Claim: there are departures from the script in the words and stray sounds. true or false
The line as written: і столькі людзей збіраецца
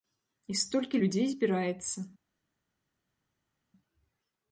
false